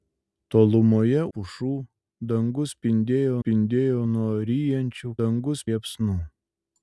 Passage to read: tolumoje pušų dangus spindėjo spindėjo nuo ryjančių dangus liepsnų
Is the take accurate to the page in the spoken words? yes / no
yes